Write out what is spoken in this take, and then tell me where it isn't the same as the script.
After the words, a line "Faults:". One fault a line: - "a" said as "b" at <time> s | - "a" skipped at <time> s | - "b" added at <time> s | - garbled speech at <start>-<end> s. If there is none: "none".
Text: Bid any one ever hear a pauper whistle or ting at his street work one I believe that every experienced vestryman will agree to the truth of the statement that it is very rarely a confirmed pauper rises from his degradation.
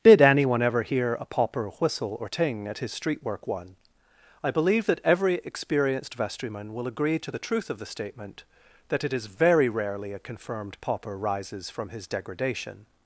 Did anyone ever hear a pauper whistle or ting at his street work one I believe that every experienced vestryman will agree to the truth of the statement that it is very rarely a confirmed pauper rises from his degradation.
Faults:
- "Bid any one" said as "Did anyone" at 0.0 s